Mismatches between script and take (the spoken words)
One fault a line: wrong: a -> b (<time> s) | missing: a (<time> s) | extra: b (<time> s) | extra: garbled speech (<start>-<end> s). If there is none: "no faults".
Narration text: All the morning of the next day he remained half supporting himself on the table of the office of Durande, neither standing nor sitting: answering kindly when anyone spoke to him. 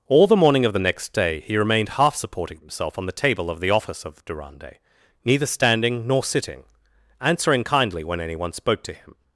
no faults